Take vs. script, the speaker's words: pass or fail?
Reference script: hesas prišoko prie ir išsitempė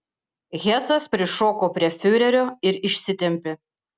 fail